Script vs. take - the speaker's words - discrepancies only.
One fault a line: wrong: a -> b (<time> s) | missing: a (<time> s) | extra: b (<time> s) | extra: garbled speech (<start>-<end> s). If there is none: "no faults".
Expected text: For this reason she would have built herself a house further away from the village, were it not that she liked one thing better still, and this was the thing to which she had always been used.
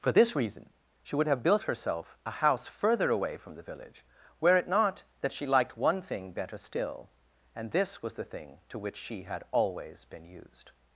no faults